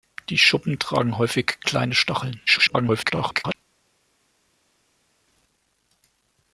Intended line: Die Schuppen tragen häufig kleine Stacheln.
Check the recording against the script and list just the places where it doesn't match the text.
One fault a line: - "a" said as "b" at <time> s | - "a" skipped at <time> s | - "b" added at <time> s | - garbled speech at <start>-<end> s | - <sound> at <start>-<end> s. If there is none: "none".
- garbled speech at 2.5-3.5 s